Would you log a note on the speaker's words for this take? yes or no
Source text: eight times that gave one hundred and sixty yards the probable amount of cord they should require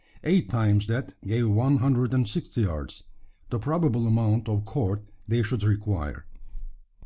no